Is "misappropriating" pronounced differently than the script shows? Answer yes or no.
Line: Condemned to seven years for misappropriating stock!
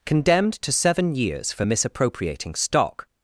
no